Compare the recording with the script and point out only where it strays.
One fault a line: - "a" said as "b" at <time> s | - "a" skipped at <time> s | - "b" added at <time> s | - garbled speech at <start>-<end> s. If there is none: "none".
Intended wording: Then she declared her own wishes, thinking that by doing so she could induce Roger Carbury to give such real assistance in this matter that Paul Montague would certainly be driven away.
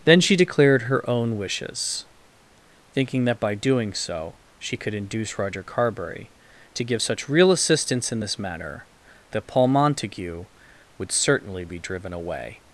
none